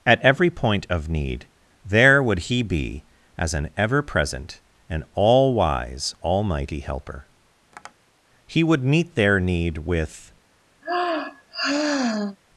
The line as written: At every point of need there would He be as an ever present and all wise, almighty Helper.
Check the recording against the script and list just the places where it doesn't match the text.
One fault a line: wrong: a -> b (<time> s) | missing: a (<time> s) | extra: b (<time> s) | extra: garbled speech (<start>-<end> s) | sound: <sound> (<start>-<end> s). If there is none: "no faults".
sound: tap (7.7-7.9 s)
extra: He would meet their need with (8.4 s)
sound: sigh (10.8-12.4 s)